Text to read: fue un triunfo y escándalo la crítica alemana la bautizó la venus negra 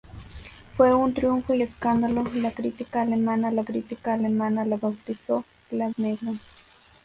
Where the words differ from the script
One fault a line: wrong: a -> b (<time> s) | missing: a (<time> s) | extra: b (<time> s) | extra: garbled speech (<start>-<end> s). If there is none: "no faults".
extra: crítica alemana la (3.6 s)
missing: venus (5.9 s)